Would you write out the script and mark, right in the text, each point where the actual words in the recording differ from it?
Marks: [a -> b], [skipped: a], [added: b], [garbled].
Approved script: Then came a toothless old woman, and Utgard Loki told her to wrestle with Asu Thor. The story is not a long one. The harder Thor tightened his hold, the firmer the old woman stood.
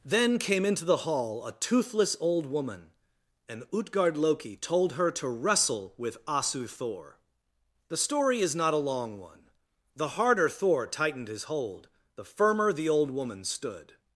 Then came [added: into the hall] a toothless old woman, and Utgard Loki told her to wrestle with Asu Thor. The story is not a long one. The harder Thor tightened his hold, the firmer the old woman stood.